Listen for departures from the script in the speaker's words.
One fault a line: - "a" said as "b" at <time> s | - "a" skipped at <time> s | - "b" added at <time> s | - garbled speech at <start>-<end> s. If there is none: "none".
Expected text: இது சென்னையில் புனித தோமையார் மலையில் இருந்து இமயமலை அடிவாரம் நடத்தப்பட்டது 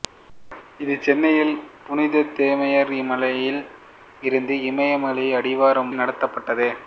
none